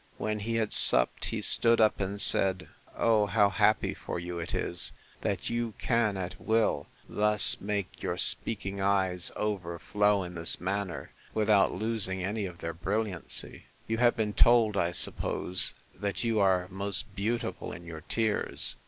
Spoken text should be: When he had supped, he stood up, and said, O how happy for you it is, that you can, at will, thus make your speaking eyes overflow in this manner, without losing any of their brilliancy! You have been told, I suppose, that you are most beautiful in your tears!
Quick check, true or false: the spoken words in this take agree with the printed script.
true